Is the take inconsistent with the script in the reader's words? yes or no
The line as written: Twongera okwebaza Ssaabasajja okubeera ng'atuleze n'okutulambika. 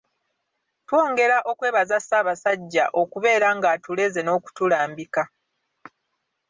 no